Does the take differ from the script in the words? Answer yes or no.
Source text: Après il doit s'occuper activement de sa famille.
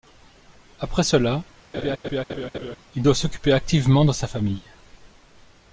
yes